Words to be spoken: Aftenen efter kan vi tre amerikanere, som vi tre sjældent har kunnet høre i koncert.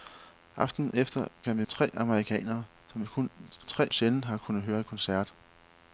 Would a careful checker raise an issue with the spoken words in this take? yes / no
no